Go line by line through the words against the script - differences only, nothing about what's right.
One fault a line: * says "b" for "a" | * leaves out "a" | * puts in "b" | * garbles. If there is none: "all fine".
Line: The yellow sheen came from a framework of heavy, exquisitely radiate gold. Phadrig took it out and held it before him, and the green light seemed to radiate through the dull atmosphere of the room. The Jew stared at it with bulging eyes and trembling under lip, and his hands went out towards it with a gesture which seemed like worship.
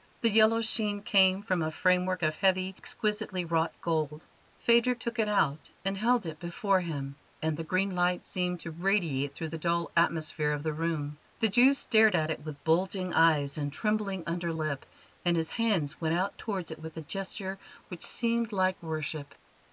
* says "wrought" for "radiate"